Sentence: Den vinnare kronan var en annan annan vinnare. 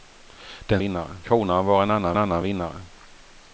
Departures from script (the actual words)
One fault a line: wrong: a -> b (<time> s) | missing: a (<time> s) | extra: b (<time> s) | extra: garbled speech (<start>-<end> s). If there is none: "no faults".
no faults